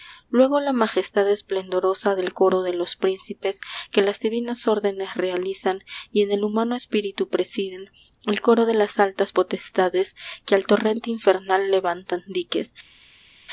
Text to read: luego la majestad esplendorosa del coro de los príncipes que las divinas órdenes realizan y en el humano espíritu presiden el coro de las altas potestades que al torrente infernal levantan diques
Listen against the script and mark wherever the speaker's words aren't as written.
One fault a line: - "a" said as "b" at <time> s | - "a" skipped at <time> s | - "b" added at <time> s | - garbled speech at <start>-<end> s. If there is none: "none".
none